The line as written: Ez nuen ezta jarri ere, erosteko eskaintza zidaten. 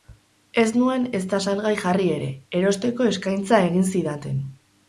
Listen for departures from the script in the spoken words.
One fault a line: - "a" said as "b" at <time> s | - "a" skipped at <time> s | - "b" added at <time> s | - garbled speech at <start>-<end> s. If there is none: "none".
- "salgai" added at 1.5 s
- "egin" added at 3.7 s